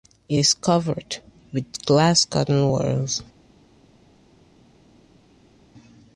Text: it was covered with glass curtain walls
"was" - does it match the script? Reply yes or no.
no